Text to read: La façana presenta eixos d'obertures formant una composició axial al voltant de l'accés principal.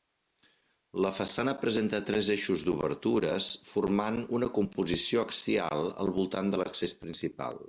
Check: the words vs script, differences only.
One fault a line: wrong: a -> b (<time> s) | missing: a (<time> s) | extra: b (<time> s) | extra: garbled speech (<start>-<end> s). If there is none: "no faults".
extra: tres (2.1 s)